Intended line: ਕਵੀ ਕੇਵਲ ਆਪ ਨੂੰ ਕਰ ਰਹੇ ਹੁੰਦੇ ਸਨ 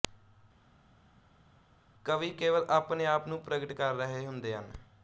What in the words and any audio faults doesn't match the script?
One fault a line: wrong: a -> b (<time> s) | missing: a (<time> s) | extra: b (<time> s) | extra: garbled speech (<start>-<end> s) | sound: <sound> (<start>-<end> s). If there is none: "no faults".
extra: ਆਪਣੇ (2.7 s)
extra: ਪ੍ਰਗਟ (3.4 s)
wrong: ਸਨ -> ਹਨ (4.5 s)